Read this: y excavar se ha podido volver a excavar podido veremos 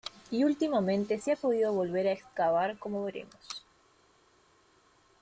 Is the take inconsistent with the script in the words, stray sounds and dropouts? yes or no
yes